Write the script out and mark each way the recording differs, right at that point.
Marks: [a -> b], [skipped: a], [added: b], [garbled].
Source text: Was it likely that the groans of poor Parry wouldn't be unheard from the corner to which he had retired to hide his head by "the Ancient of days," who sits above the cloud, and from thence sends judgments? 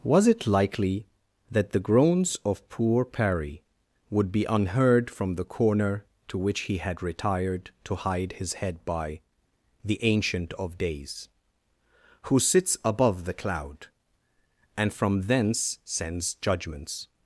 Was it likely that the groans of poor Parry [wouldn't -> would] be unheard from the corner to which he had retired to hide his head by "the Ancient of days," who sits above the cloud, and from thence sends judgments?